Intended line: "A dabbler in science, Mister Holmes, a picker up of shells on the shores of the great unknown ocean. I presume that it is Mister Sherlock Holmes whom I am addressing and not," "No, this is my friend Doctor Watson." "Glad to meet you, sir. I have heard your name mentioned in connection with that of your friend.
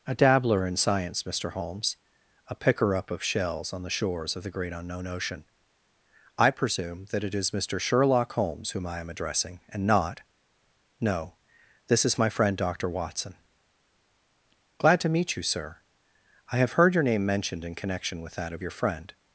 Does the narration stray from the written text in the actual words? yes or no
no